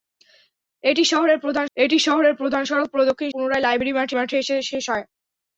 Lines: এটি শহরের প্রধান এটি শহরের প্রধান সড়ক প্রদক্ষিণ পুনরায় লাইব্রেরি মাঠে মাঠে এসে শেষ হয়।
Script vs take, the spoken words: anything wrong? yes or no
no